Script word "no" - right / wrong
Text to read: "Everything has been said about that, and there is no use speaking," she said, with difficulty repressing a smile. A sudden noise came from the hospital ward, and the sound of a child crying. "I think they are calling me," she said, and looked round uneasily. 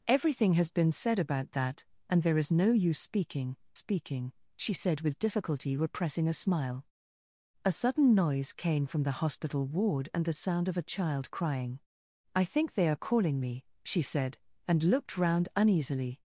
right